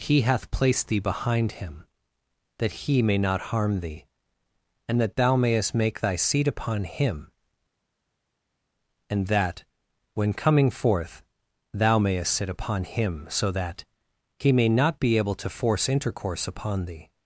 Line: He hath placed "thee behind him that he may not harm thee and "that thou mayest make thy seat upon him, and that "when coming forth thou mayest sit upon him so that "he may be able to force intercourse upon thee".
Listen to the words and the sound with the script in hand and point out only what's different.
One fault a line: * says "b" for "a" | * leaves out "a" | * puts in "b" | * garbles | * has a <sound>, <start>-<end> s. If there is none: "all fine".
* puts in "not"